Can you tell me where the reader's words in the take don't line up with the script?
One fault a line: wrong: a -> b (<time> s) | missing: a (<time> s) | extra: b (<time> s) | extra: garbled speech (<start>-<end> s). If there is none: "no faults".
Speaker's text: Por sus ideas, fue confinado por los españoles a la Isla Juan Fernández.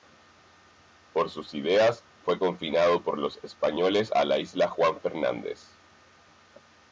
no faults